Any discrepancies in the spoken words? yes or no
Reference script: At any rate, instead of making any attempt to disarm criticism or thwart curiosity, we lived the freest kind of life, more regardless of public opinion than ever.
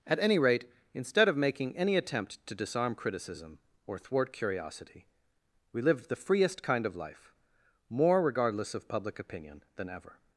no